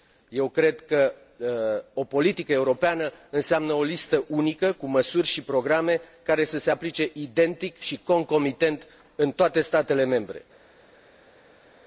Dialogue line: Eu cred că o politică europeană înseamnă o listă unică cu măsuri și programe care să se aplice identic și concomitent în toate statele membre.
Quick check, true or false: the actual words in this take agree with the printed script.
true